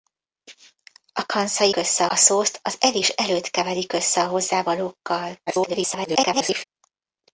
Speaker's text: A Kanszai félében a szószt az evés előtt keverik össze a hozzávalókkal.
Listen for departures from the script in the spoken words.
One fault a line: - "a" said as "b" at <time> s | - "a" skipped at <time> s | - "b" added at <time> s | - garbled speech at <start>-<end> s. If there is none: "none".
- "félében" said as "össze" at 1.7 s
- garbled speech at 5.5-6.6 s